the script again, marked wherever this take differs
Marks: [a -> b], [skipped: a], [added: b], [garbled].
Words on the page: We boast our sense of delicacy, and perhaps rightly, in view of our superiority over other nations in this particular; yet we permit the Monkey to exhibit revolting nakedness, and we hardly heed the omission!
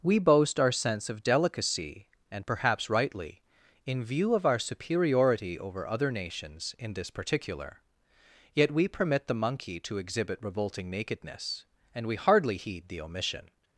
We boast our sense of delicacy, and perhaps rightly, in view of our superiority over other nations in this particular; yet we permit the Monkey to exhibit revolting nakedness, and we hardly heed the omission!